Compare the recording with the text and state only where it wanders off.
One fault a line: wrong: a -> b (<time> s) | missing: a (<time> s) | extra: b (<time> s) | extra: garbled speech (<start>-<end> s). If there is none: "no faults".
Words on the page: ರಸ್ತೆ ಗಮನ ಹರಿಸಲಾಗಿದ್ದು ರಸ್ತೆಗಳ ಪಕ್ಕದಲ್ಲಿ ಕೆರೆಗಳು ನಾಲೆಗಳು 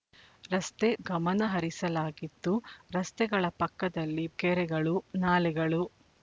no faults